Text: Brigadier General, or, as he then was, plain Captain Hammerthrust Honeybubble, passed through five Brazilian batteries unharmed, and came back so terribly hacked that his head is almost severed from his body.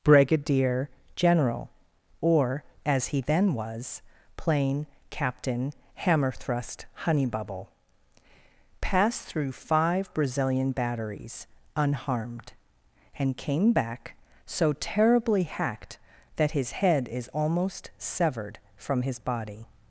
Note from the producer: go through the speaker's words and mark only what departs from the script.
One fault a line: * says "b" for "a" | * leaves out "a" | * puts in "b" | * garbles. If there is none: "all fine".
all fine